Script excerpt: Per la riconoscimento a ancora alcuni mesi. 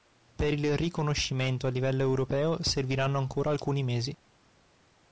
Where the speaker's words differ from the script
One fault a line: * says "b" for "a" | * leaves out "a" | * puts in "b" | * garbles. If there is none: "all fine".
* says "il" for "la"
* puts in "livello europeo serviranno"